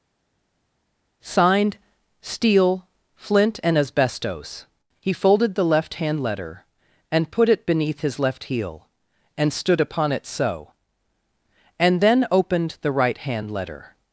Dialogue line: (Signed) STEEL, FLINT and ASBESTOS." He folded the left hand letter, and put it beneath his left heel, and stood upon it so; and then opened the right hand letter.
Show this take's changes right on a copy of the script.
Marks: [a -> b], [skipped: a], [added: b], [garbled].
(Signed) STEEL, FLINT and ASBESTOS." He folded the left hand letter, and put it beneath his left heel, and stood upon it so; and then opened the right hand letter.